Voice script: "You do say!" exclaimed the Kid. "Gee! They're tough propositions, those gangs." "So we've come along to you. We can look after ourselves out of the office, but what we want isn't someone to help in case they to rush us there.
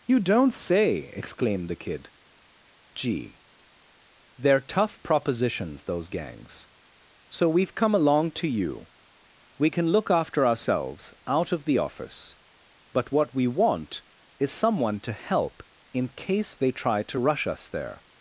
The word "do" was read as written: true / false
false